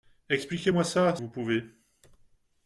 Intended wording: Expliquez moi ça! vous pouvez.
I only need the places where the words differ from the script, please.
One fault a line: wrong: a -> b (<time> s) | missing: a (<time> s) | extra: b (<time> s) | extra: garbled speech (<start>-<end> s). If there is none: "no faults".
no faults